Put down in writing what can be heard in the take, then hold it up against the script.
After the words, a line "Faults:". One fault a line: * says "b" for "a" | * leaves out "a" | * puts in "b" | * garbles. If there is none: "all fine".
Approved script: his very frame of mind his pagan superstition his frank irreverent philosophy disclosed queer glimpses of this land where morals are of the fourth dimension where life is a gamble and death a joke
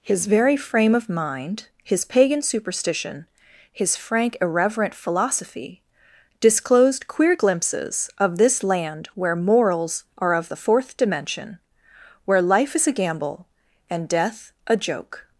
his very frame of mind his pagan superstition his frank irreverent philosophy disclosed queer glimpses of this land where morals are of the fourth dimension where life is a gamble and death a joke
Faults:
all fine